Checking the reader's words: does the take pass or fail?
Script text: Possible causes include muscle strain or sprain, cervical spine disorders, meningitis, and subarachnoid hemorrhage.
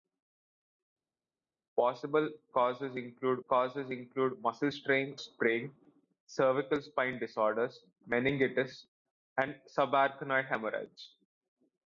fail